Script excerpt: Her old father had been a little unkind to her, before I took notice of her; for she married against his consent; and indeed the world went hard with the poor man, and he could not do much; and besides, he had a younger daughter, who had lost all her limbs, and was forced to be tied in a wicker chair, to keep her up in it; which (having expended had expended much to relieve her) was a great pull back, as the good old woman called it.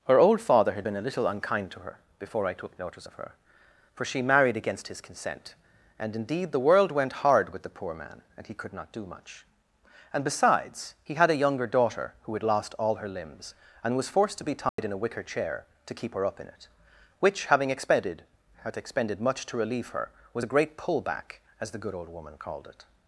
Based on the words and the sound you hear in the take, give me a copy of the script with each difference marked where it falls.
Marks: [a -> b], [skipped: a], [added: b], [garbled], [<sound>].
Her old father had been a little unkind to her, before I took notice of her; for she married against his consent; and indeed the world went hard with the poor man, and he could not do much; and besides, he had a younger daughter, who had lost all her limbs, and was forced to be tied [dropout] in a wicker chair, to keep her up in it; which (having expended had expended much to relieve her) was a great pull back, as the good old woman called it.